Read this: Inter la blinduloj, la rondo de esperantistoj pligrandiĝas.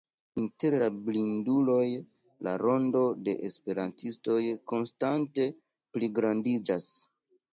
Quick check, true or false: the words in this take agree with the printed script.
false